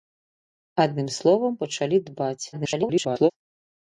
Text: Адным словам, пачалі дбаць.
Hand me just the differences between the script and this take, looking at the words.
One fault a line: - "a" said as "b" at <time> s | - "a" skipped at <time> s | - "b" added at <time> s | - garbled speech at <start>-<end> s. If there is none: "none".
- garbled speech at 2.5-3.3 s